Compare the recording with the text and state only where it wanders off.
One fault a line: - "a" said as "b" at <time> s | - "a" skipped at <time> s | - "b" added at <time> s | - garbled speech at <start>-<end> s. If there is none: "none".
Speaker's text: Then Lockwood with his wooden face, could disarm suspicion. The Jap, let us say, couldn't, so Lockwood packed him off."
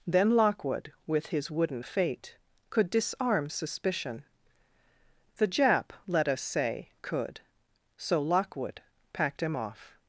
- "face" said as "fate" at 1.8 s
- "couldn't" said as "could" at 7.0 s